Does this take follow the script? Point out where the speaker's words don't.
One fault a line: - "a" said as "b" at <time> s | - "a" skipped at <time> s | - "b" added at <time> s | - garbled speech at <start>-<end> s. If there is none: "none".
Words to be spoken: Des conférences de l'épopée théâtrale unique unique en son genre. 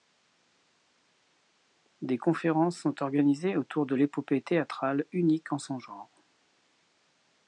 - "sont organisées autour" added at 2.8 s
- "unique" skipped at 5.5 s